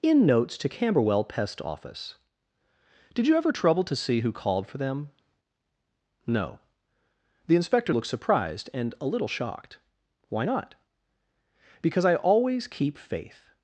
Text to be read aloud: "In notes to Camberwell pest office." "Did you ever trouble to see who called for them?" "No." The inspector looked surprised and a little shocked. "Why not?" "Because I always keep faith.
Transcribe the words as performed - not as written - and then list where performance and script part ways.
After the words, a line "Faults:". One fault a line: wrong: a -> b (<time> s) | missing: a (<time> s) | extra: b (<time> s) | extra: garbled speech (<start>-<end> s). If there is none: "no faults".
"In notes to Camberwell pest office." "Did you ever trouble to see who called for them?" "No." The inspector looked surprised and a little shocked. "Why not?" "Because I always keep faith.
Faults:
no faults